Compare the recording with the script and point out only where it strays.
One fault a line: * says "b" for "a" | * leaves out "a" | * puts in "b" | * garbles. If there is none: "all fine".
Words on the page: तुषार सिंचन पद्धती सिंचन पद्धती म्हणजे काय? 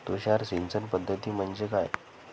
* leaves out "सिंचन पद्धती"